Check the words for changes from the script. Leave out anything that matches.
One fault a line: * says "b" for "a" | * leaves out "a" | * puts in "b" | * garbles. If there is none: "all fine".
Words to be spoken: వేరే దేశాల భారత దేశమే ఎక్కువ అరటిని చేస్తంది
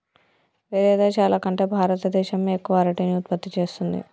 * puts in "కంటే"
* puts in "ఉత్పత్తి"